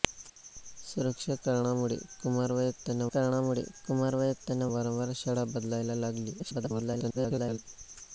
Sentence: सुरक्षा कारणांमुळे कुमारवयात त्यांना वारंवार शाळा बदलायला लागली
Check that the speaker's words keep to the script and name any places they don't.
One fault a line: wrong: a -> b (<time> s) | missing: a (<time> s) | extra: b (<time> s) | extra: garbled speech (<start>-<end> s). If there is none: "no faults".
extra: कारणांमुळे कुमारवयात त्यांना (3.1 s)
extra: garbled speech (6.4-7.6 s)